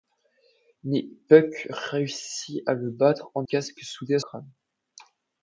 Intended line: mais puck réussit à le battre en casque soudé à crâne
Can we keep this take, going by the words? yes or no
yes